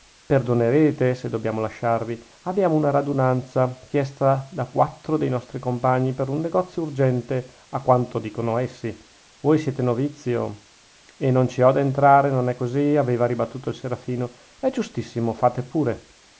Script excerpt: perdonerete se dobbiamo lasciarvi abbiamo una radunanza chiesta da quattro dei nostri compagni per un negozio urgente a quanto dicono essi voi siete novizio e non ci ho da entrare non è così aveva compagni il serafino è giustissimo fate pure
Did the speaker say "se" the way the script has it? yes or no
yes